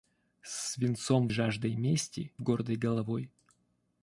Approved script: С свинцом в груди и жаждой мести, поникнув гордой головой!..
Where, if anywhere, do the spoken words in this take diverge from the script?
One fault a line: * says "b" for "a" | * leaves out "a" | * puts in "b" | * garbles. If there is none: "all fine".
* leaves out "в груди и"
* leaves out "поникнув"